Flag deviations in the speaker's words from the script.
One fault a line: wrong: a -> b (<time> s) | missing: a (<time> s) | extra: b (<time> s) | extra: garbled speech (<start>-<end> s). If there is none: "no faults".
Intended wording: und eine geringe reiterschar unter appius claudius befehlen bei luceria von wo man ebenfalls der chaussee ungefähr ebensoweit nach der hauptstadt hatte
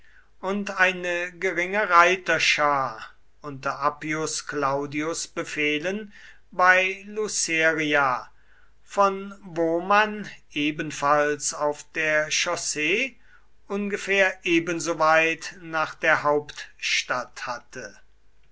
extra: auf (11.5 s)